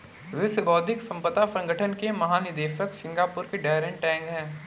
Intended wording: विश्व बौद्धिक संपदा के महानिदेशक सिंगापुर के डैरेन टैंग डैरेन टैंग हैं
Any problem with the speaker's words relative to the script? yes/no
yes